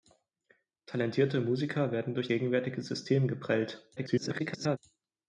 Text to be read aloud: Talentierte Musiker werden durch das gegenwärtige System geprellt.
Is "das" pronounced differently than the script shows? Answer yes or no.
yes